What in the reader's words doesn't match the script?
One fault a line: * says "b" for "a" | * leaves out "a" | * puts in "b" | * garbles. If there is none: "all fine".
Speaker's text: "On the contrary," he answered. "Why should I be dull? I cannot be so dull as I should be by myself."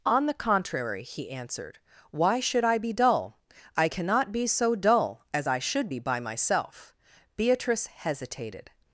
* puts in "Beatrice hesitated"